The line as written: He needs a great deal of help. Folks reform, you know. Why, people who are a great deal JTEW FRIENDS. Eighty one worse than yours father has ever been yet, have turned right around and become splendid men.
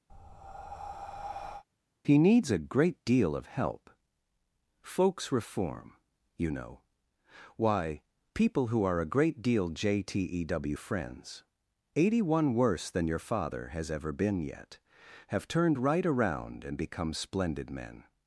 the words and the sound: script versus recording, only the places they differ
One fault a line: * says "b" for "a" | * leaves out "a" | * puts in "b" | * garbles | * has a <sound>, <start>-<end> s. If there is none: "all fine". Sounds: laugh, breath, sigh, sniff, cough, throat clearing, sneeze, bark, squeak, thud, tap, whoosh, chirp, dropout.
* has a breath, 0.1-1.6 s
* says "your" for "yours"